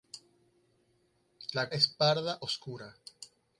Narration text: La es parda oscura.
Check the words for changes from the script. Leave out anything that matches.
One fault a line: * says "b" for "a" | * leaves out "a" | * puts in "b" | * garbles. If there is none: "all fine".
all fine